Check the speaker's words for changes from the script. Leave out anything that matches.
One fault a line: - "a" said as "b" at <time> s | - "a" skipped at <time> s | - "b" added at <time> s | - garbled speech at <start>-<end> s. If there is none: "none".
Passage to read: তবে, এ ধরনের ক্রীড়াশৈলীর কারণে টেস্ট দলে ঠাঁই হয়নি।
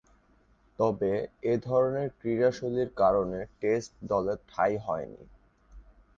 none